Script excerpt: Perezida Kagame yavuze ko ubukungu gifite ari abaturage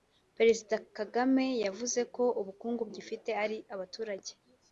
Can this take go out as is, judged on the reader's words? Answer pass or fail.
pass